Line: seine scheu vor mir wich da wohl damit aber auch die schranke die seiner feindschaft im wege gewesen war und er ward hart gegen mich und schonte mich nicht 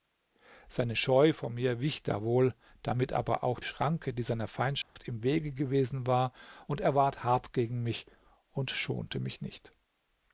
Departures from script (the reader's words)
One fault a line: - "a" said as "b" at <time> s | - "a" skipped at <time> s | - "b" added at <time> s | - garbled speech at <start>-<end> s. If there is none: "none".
- "die" skipped at 3.6 s